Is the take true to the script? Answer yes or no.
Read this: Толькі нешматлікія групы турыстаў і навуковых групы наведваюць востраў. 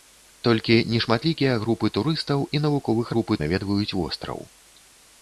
yes